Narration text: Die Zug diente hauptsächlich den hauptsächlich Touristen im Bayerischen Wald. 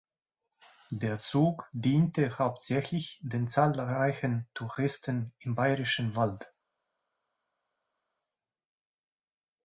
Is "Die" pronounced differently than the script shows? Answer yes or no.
yes